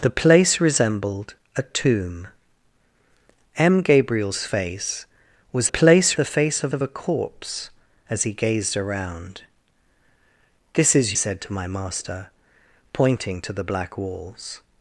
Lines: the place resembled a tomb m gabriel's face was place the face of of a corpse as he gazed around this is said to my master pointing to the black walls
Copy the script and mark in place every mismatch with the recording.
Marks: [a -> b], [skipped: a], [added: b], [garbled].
the place resembled a tomb m gabriel's face was place the face of of a corpse as he gazed around this is said to my master pointing to the black walls